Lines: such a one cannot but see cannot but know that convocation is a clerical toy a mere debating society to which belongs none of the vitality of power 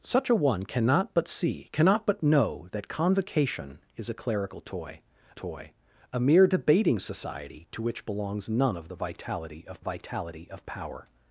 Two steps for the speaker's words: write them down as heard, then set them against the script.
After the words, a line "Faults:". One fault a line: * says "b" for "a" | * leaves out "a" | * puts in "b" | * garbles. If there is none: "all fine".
such a one cannot but see cannot but know that convocation is a clerical toy toy a mere debating society to which belongs none of the vitality of vitality of power
Faults:
* puts in "toy"
* puts in "vitality of"